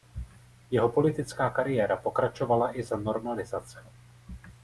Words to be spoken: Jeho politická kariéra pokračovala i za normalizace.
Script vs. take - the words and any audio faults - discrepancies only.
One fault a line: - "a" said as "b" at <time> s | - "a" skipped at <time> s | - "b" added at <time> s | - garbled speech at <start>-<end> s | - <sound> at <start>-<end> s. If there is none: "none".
none